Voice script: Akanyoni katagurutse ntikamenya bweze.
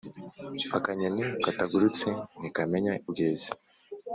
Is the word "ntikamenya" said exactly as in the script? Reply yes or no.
yes